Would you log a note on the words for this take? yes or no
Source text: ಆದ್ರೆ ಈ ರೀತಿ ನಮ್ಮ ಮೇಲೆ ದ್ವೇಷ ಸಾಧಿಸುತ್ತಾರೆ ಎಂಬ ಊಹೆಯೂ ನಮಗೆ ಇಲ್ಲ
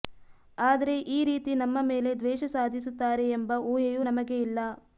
no